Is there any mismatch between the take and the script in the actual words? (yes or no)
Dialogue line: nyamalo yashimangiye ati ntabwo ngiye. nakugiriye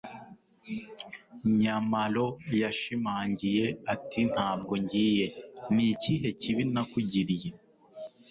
yes